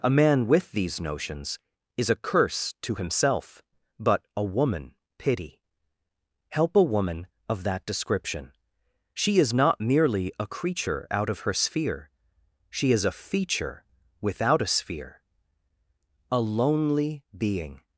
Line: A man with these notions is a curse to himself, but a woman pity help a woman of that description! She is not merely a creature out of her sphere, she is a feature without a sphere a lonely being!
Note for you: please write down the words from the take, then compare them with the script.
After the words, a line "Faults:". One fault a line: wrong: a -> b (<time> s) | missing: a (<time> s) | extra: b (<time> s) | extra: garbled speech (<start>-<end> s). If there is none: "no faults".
A man with these notions is a curse to himself, but a woman pity help a woman of that description! She is not merely a creature out of her sphere, she is a feature without a sphere a lonely being!
Faults:
no faults